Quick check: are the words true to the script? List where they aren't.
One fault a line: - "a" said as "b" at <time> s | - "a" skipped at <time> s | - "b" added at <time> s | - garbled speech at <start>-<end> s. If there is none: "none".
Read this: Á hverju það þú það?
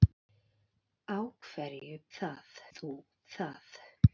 none